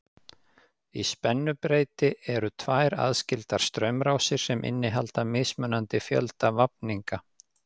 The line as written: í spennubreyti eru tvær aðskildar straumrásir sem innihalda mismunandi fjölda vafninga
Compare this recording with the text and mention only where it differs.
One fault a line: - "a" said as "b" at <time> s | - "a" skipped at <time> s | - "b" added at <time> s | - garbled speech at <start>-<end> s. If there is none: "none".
none